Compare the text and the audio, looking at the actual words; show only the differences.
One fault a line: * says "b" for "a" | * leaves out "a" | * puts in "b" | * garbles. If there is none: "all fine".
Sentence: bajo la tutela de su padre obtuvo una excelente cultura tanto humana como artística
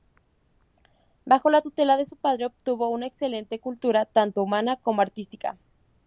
all fine